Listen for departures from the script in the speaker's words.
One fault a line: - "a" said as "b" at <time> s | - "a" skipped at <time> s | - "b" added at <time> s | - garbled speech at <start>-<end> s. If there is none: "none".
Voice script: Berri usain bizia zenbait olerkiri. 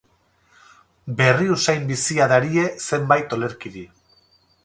- "darie" added at 2.3 s